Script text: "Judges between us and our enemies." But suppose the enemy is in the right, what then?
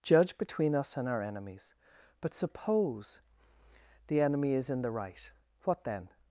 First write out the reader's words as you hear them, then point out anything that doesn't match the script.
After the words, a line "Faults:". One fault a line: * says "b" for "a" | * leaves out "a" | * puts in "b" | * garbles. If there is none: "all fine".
"Judge between us and our enemies." But suppose the enemy is in the right, what then?
Faults:
* says "Judge" for "Judges"